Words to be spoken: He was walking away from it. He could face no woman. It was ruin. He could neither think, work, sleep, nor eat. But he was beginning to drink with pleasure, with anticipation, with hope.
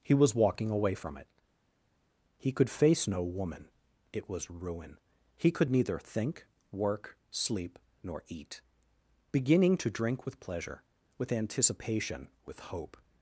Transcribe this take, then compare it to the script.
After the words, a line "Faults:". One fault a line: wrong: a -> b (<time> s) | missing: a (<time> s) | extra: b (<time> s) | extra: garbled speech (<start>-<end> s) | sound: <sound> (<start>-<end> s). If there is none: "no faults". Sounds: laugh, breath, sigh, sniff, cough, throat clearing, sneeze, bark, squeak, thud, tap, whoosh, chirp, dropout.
He was walking away from it. He could face no woman. It was ruin. He could neither think, work, sleep, nor eat. beginning to drink with pleasure, with anticipation, with hope.
Faults:
missing: But he was (8.6 s)